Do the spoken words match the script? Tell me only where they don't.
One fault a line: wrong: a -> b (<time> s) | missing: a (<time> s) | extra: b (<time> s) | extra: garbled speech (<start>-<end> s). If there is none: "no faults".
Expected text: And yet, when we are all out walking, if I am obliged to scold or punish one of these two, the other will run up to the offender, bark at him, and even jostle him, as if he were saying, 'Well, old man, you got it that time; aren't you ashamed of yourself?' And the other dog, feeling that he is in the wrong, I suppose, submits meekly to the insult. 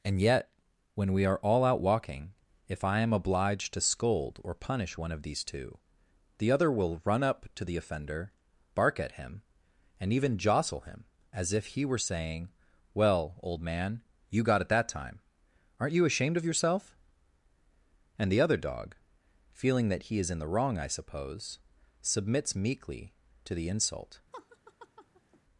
no faults